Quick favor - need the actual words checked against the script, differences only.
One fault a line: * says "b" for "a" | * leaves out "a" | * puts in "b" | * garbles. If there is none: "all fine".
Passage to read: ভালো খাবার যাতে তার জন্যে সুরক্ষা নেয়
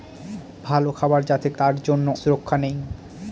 all fine